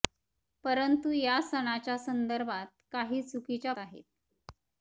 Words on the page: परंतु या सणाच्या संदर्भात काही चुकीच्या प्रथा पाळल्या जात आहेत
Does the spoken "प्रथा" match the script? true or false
false